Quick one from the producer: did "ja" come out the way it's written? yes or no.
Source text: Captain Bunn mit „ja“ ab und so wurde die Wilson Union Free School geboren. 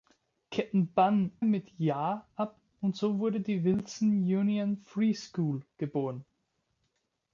yes